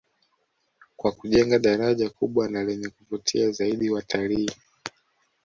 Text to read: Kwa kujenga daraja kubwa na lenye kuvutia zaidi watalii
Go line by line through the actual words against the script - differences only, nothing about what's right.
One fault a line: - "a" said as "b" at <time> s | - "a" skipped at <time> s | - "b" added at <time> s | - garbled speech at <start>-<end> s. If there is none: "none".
none